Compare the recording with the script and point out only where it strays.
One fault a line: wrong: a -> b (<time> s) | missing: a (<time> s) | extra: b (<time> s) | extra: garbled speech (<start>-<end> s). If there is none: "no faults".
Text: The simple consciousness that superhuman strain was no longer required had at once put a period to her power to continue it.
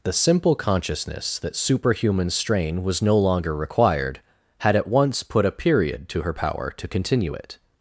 no faults